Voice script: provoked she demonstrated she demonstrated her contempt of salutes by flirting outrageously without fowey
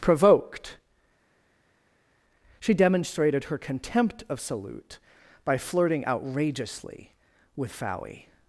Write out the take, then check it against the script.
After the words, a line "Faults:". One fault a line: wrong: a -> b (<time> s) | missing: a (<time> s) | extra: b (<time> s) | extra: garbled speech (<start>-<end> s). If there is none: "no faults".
provoked she demonstrated her contempt of salute by flirting outrageously with fowey
Faults:
missing: she demonstrated (3.4 s)
wrong: salutes -> salute (4.4 s)
wrong: without -> with (7.6 s)